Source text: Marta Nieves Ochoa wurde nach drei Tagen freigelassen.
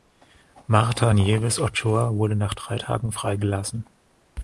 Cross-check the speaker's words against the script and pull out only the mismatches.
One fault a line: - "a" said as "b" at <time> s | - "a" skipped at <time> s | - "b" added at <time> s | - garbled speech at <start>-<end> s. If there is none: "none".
none